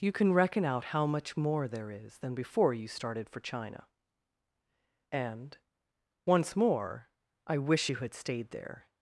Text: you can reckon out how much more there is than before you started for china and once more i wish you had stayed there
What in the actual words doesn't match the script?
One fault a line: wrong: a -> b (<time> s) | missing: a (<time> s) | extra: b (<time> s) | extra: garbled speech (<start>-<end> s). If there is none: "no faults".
no faults